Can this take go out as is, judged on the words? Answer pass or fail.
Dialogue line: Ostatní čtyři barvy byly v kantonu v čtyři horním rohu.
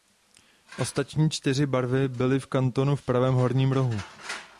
fail